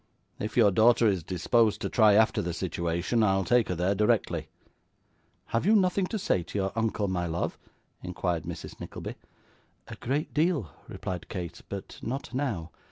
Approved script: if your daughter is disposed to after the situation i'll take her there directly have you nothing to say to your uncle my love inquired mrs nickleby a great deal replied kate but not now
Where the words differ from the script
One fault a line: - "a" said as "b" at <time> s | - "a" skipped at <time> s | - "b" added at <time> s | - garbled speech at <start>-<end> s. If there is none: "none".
- "try" added at 1.9 s